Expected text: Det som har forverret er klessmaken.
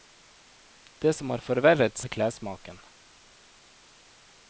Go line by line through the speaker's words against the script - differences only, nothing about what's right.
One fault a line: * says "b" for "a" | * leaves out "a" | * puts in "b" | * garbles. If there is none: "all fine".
all fine